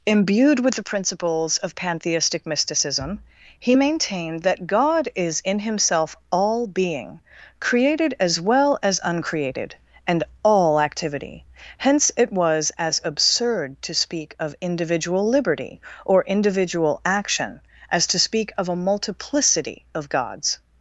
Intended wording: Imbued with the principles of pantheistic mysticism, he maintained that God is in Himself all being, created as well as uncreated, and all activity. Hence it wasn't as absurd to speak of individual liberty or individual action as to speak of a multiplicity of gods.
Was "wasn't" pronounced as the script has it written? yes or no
no